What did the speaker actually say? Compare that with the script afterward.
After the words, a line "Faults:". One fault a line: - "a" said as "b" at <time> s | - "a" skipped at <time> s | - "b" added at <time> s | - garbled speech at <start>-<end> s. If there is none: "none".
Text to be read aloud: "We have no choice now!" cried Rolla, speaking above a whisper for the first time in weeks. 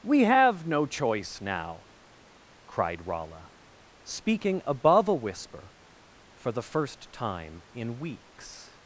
"We have no choice now!" cried Rolla, speaking above a whisper for the first time in weeks.
Faults:
none